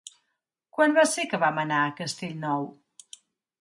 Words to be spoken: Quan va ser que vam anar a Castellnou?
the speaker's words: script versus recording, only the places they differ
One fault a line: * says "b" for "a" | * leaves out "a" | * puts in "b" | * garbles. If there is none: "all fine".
all fine